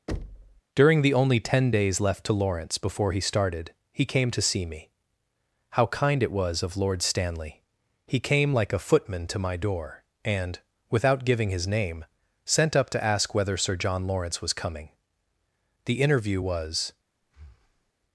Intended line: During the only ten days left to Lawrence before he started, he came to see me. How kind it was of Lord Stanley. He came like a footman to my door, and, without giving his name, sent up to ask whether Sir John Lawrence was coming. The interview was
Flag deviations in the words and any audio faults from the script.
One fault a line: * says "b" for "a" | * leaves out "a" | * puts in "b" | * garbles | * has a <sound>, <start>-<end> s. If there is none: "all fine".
* has a thud, 0.1-0.6 s
* has a breath, 17.2-17.9 s